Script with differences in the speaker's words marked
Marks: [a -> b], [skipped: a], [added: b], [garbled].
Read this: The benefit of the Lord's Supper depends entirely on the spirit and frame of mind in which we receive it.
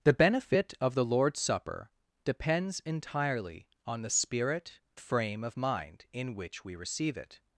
The benefit of the Lord's Supper depends entirely on the spirit [skipped: and] frame of mind in which we receive it.